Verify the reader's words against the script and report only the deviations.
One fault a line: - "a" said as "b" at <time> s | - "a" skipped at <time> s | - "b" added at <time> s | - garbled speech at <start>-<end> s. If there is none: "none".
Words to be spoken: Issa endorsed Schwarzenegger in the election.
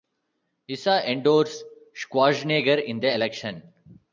none